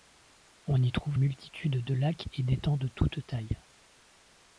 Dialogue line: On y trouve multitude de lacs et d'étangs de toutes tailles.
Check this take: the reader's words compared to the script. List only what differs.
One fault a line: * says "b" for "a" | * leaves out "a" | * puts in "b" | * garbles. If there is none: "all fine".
all fine